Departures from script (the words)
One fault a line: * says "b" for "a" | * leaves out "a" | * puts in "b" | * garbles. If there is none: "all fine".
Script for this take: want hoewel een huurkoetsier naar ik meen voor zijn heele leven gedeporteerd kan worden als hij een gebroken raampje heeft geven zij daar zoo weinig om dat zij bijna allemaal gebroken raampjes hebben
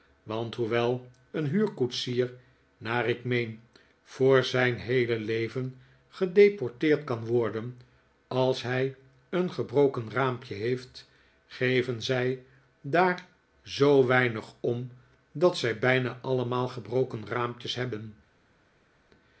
all fine